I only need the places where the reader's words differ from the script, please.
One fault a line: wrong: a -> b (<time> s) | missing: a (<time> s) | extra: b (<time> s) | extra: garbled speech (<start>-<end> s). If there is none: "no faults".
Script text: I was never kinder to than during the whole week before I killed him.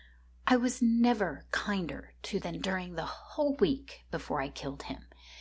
no faults